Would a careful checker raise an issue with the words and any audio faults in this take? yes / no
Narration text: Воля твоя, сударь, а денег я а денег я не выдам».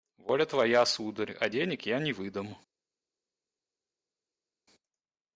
yes